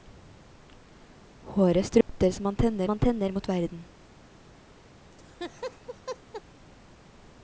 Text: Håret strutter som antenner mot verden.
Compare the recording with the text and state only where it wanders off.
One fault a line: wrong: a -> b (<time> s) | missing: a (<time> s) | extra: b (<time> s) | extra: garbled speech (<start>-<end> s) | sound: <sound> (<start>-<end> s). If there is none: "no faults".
sound: dropout (2.0-2.1 s)
extra: antenner (2.9 s)
sound: laugh (5.1-6.4 s)